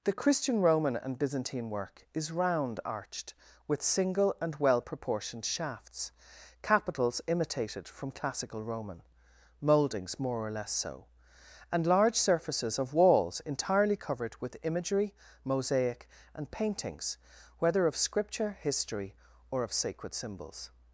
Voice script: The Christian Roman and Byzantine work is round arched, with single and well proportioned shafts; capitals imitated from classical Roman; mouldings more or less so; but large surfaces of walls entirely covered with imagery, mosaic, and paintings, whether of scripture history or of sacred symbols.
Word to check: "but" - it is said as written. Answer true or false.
false